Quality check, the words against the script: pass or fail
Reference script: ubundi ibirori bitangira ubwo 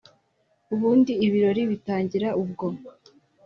pass